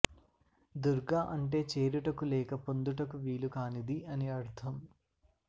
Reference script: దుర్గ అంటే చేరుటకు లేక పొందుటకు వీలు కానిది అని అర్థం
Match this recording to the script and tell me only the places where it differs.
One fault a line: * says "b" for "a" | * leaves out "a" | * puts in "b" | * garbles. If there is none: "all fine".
all fine